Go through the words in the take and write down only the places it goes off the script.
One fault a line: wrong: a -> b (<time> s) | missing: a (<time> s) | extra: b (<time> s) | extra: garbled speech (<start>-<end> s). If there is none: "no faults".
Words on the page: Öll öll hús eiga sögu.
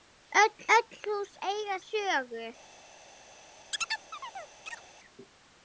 no faults